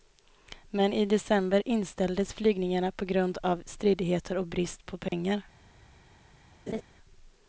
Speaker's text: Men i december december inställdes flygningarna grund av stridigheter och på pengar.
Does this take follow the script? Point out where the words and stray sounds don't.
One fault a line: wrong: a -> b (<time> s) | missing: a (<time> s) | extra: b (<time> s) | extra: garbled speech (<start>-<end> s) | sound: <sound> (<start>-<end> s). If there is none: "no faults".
missing: december (1.6 s)
extra: på (2.9 s)
extra: brist (4.5 s)
sound: dropout (5.1-5.1 s)
sound: laugh (6.7-6.8 s)